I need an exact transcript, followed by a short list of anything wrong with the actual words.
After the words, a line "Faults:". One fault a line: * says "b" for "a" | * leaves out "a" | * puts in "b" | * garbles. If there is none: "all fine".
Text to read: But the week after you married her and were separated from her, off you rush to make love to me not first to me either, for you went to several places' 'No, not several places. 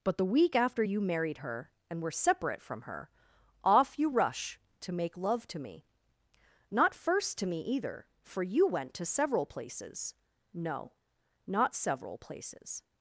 But the week after you married her and were separate from her, off you rush to make love to me not first to me either, for you went to several places' 'No, not several places.
Faults:
* says "separate" for "separated"